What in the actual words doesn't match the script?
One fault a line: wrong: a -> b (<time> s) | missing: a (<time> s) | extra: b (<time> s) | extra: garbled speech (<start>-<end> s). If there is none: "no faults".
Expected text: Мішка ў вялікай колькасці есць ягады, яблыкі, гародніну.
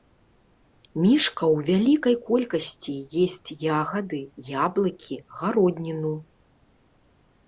no faults